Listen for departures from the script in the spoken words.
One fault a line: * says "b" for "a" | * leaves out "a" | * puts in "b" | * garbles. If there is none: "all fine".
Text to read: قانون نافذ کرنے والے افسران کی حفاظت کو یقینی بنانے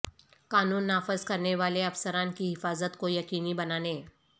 all fine